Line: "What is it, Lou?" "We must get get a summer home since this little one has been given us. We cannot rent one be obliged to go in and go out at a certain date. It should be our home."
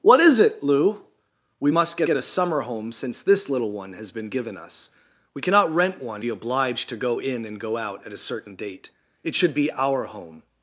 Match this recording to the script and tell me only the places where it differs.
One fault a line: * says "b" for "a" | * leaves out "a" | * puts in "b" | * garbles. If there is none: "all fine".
all fine